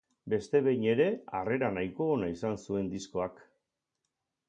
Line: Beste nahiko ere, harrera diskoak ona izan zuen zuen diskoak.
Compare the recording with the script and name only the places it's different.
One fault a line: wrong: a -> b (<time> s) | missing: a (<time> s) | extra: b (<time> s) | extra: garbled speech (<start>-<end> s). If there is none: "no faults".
wrong: nahiko -> behin (0.7 s)
wrong: diskoak -> nahiko (1.8 s)
missing: zuen (2.9 s)